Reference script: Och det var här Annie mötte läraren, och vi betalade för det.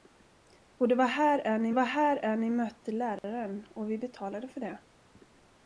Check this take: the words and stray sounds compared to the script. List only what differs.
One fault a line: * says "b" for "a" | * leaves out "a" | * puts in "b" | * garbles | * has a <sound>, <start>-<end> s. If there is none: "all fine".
* puts in "var här Annie"
* has a dropout, 3.2-3.2 s